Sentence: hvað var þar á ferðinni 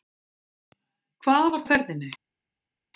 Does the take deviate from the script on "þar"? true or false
true